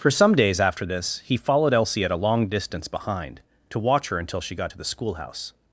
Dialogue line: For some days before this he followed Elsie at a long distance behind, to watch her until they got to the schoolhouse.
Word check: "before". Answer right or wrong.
wrong